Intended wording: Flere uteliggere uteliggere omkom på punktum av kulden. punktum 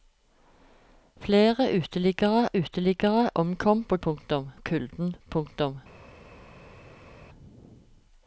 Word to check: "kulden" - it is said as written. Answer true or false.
true